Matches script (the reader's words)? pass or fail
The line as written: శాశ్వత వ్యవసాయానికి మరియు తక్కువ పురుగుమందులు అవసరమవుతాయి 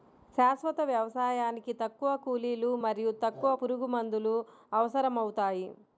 fail